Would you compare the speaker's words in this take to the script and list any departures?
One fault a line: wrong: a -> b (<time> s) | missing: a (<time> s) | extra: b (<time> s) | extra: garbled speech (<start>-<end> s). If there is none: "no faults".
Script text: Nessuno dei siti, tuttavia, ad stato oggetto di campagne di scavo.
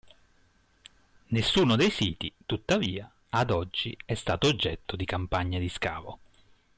extra: oggi è (3.5 s)